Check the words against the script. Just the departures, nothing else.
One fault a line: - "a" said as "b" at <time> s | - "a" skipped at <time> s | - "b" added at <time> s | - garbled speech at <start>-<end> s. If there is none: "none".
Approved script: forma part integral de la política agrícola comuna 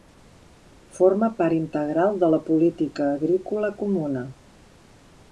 none